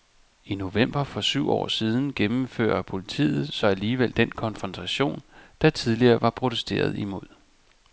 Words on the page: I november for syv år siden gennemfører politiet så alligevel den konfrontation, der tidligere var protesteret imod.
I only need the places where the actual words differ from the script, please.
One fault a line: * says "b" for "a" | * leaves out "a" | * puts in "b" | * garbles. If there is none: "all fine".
all fine